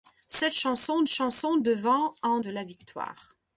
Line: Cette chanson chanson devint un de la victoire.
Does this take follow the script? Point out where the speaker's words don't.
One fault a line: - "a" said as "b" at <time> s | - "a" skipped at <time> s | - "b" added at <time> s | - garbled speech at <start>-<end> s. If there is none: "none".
none